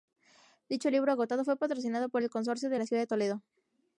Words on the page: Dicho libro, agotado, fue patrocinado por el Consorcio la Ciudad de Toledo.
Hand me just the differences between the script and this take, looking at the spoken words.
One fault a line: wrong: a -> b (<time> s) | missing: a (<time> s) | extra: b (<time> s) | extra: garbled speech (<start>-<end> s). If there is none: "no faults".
extra: de (2.7 s)